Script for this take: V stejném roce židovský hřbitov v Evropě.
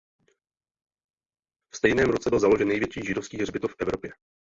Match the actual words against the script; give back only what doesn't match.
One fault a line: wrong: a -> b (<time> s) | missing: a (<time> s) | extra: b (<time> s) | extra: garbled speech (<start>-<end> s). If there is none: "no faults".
extra: byl založen největší (2.3 s)